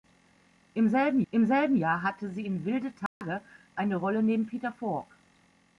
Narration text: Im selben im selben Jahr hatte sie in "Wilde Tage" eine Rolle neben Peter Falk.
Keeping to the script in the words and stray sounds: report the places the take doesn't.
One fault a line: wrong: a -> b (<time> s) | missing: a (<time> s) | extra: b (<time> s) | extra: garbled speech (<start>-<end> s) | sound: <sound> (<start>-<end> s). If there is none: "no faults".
sound: dropout (3.1-3.2 s)